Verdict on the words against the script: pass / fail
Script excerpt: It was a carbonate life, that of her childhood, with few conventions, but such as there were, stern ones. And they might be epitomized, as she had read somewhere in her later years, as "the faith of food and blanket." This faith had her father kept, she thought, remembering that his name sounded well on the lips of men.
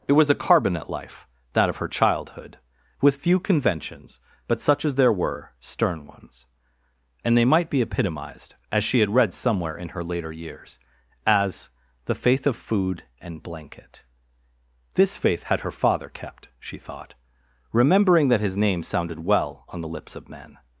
pass